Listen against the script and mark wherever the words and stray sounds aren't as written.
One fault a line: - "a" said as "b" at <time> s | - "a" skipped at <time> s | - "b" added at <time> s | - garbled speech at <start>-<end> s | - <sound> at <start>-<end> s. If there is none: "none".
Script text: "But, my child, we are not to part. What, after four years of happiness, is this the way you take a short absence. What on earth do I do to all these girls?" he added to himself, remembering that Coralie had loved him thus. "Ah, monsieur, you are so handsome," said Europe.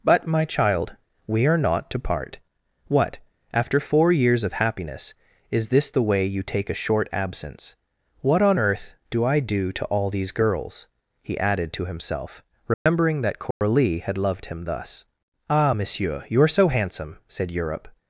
- dropout at 12.7-12.9 s
- dropout at 13.5-13.6 s